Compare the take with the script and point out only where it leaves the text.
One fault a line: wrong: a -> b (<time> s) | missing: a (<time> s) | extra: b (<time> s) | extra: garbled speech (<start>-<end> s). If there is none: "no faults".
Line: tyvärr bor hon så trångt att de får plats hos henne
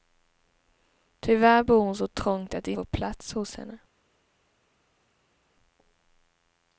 no faults